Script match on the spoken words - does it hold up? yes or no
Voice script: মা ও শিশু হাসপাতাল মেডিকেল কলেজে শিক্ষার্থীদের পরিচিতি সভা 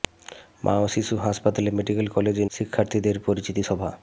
yes